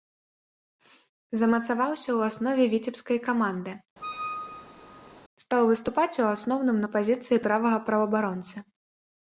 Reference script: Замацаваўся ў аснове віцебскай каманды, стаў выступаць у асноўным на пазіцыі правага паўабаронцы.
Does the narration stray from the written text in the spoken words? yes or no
no